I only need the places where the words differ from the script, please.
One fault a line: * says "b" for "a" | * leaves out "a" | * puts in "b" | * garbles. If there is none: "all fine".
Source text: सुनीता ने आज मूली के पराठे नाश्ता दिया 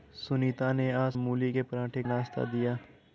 all fine